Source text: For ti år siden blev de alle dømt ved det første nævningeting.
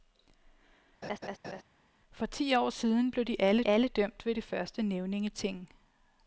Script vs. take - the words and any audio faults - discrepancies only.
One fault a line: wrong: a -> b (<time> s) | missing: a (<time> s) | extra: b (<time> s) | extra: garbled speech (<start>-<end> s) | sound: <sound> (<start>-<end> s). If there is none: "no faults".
sound: laugh (1.0-1.6 s)
extra: alle (3.7 s)